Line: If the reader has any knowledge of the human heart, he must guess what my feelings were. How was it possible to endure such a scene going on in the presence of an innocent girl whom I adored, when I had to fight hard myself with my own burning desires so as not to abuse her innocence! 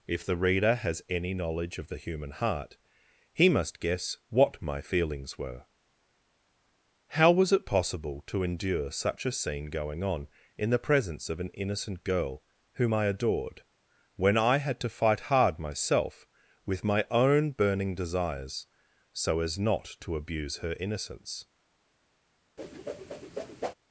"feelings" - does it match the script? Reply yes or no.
yes